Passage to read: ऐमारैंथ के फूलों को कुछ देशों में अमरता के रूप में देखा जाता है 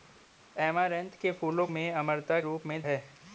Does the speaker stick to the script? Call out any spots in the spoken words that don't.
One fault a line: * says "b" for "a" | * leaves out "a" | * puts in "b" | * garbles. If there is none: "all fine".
* leaves out "को कुछ देशों"
* leaves out "के"
* leaves out "देखा जाता"